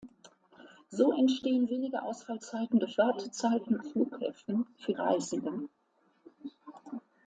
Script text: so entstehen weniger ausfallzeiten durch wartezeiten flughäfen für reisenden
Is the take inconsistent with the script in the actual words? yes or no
no